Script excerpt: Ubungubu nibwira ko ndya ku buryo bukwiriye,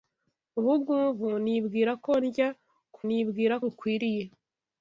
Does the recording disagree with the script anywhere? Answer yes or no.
yes